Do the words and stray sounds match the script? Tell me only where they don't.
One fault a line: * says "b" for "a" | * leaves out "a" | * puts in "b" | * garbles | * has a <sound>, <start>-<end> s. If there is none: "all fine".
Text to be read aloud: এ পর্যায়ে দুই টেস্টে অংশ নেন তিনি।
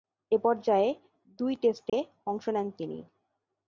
* has a dropout, 1.9-1.9 s